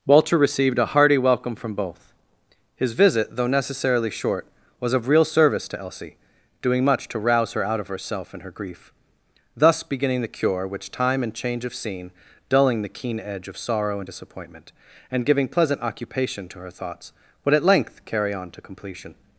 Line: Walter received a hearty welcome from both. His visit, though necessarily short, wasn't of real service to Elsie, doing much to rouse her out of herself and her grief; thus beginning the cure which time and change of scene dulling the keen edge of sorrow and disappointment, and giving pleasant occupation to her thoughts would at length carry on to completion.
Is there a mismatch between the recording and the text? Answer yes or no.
yes